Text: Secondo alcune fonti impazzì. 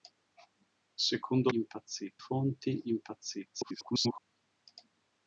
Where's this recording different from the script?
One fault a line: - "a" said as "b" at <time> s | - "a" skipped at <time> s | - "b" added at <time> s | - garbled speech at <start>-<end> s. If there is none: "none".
- "alcune" said as "impazzì" at 1.5 s
- garbled speech at 3.5-4.2 s